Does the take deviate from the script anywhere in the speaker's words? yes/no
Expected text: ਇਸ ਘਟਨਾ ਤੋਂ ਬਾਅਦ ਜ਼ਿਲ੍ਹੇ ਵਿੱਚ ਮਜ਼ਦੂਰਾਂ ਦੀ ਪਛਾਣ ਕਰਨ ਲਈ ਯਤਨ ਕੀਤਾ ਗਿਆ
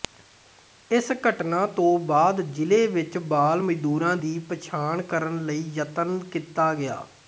yes